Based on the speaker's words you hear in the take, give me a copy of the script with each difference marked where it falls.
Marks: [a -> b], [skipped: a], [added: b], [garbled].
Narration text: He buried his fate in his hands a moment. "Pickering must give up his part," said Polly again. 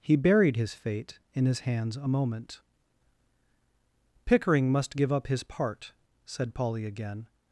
He buried his fate in his hands a moment. "Pickering must give up his part," said Polly again.